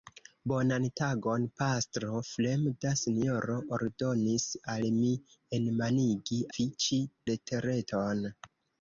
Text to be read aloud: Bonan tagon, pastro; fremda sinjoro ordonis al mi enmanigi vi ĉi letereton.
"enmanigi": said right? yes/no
yes